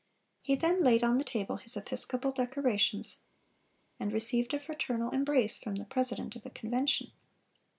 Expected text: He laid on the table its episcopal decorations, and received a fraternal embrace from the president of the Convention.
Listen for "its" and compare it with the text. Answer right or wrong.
wrong